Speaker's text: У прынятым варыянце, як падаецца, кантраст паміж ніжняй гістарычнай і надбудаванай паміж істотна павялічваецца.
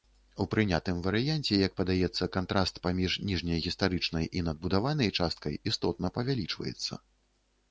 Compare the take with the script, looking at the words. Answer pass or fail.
fail